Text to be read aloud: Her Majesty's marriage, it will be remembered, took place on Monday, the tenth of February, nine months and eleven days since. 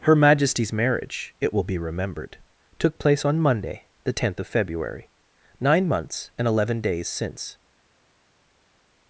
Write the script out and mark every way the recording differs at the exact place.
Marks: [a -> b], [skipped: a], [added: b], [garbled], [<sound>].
Her Majesty's marriage, it will be remembered, took place on Monday, the tenth of February, nine months and eleven days since.